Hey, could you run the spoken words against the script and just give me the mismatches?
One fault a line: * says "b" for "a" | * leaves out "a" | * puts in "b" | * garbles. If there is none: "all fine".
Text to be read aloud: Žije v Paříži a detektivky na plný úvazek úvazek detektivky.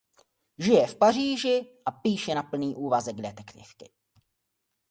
* says "píše" for "detektivky"
* leaves out "úvazek"